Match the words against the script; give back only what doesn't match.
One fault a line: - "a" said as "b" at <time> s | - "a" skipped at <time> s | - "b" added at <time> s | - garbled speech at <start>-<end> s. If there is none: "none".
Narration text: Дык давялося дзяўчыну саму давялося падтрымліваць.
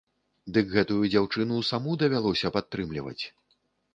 - "давялося" said as "гэтую" at 0.8 s